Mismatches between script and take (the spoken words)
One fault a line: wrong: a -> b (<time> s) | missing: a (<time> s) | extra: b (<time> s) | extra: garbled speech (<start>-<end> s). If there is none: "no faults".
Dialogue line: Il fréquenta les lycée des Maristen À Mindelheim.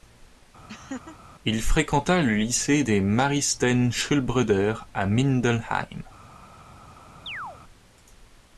wrong: les -> le (2.2 s)
extra: Schulbrüder (3.9 s)